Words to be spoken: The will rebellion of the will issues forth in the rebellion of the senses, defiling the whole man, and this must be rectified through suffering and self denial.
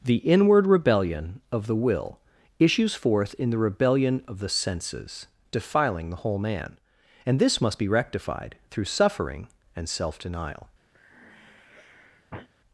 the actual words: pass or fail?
fail